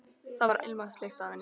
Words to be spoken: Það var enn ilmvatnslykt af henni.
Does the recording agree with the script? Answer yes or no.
no